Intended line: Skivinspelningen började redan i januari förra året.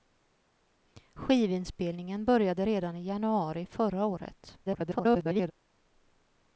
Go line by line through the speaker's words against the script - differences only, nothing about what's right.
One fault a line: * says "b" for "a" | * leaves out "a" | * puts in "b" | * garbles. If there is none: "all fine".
* garbles